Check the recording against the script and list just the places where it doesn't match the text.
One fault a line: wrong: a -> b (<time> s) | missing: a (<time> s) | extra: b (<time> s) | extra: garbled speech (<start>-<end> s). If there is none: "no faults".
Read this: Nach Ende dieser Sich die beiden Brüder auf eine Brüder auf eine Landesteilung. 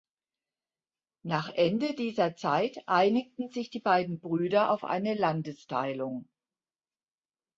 extra: Zeit einigten (2.4 s)
missing: Brüder auf eine (5.1 s)